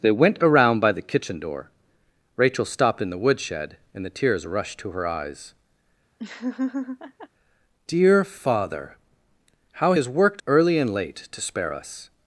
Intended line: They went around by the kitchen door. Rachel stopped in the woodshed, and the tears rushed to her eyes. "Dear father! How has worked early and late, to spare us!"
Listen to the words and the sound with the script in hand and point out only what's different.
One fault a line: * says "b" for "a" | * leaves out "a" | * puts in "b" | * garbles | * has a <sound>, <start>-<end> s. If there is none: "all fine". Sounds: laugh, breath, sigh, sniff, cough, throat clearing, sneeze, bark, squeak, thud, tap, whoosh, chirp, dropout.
* has a laugh, 6.2-7.3 s